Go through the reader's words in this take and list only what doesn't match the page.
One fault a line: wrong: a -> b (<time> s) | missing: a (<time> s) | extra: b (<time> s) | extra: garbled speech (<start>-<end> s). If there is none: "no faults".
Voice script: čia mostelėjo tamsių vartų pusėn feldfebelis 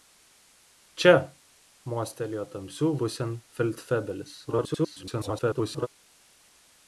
missing: vartų (2.9 s)
extra: garbled speech (4.5-5.9 s)